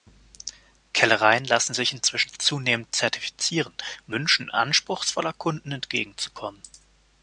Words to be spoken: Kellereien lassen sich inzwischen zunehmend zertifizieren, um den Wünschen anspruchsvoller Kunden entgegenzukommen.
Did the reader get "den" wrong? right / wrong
wrong